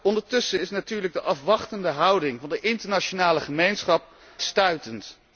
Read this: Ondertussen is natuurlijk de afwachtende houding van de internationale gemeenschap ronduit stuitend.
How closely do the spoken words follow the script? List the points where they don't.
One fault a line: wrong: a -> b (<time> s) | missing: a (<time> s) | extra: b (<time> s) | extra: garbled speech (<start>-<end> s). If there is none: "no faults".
missing: ronduit (4.0 s)